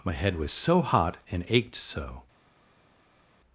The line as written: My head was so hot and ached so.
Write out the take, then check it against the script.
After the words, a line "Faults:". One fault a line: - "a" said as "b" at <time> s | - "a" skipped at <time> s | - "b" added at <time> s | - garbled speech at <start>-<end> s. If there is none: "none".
My head was so hot and ached so.
Faults:
none